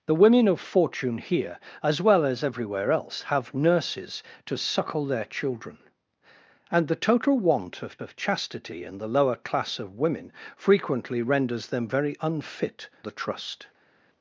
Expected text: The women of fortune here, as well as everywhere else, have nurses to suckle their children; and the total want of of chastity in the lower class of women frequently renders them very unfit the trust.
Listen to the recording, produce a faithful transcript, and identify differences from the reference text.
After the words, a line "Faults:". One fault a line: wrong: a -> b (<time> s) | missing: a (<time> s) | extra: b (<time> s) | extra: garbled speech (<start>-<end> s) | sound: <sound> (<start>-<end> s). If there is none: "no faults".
The women of fortune here, as well as everywhere else, have nurses to suckle their children; and the total want of of chastity in the lower class of women frequently renders them very unfit the trust.
Faults:
no faults